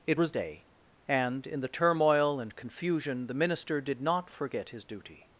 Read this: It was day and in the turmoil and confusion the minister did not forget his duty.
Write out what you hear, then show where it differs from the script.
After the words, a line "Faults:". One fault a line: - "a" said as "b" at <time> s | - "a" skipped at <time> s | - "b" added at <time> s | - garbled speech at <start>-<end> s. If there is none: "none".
It was day and in the turmoil and confusion the minister did not forget his duty.
Faults:
none